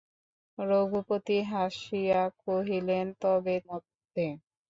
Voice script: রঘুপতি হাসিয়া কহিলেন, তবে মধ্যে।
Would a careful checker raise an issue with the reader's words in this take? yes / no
no